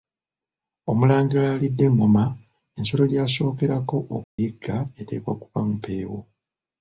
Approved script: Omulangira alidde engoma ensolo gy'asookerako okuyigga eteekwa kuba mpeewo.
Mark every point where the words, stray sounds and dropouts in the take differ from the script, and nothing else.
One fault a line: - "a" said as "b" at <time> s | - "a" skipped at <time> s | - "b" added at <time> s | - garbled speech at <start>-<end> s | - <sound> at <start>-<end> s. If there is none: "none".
- dropout at 4.2-4.4 s